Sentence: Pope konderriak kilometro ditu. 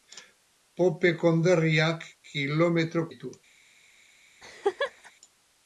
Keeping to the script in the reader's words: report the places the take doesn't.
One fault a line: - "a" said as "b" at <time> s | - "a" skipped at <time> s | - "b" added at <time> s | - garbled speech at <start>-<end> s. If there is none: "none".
none